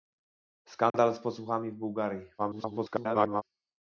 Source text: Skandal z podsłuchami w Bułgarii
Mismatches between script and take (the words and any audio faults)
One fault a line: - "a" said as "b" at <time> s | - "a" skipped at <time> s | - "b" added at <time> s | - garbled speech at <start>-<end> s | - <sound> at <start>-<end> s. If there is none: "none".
- dropout at 0.9-0.9 s
- garbled speech at 2.4-3.4 s